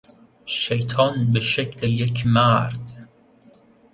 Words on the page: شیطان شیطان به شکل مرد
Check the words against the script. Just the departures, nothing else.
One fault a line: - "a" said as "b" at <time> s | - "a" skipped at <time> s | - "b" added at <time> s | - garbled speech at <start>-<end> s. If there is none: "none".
- "شیطان" skipped at 1.3 s
- "یک" added at 1.9 s